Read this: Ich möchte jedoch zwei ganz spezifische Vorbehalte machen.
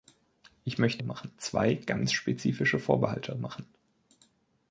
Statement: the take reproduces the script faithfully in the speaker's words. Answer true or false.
false